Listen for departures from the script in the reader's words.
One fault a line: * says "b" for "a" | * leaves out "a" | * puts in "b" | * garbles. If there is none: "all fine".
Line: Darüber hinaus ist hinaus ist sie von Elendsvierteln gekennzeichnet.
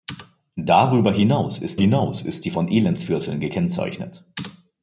all fine